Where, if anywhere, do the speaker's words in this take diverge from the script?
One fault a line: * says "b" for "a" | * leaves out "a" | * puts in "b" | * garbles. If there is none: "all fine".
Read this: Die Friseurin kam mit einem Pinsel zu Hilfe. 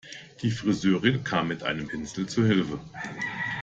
all fine